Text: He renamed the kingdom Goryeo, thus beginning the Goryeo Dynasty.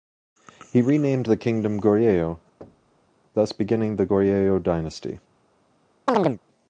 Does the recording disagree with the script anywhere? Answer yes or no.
no